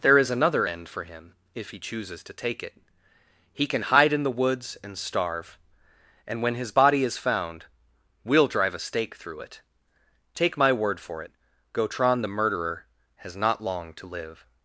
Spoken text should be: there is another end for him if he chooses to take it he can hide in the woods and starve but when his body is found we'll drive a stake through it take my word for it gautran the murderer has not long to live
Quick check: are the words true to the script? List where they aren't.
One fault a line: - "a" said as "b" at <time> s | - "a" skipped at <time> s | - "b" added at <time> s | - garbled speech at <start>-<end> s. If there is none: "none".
- "but" said as "and" at 6.3 s